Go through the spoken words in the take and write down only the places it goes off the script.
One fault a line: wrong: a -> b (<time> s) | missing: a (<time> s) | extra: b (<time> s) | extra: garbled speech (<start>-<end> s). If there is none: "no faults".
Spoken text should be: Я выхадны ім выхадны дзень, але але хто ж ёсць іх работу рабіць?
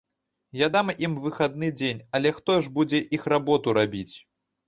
wrong: выхадны -> дам (0.7 s)
missing: але (2.3 s)
wrong: ёсць -> будзе (2.8 s)